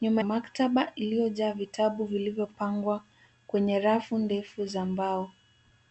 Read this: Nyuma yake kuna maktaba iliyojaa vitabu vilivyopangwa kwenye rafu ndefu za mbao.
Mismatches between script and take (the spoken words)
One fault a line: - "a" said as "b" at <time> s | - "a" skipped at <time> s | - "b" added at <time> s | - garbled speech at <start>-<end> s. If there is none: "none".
- "yake kuna" skipped at 0.2 s